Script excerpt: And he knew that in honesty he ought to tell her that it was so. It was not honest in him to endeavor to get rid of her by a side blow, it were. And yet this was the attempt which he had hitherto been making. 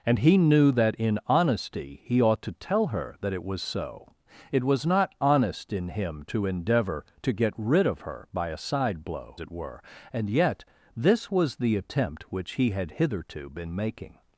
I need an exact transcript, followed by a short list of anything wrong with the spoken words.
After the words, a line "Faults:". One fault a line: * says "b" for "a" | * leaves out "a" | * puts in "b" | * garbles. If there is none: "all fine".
And he knew that in honesty he ought to tell her that it was so. It was not honest in him to endeavor to get rid of her by a side blow, it were. And yet this was the attempt which he had hitherto been making.
Faults:
all fine